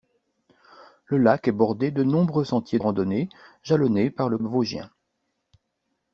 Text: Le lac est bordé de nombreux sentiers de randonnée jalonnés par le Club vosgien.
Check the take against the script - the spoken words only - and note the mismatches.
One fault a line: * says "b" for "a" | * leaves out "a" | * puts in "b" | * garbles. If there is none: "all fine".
* leaves out "de"
* leaves out "Club"